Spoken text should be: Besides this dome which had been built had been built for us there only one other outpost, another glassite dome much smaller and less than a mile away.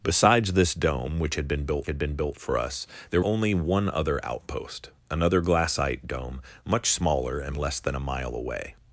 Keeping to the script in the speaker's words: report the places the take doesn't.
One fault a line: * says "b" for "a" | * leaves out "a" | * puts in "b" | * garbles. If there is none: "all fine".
all fine